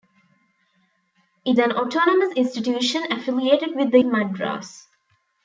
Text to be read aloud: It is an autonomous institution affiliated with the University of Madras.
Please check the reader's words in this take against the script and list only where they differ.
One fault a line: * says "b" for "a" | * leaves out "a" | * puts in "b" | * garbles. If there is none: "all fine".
* leaves out "is"
* leaves out "University of"